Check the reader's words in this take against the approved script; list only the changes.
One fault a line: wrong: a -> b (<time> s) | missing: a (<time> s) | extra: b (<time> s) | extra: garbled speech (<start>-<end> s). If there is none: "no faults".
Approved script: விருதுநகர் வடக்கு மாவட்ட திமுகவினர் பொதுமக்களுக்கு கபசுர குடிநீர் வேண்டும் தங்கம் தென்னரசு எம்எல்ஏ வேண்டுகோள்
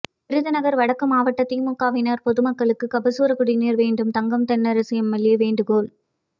no faults